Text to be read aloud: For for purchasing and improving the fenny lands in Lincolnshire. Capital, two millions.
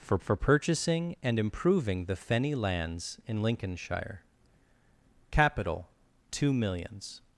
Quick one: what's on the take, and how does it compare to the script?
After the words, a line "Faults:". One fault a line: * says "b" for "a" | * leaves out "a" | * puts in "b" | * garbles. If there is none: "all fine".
For for purchasing and improving the fenny lands in Lincolnshire. Capital, two millions.
Faults:
all fine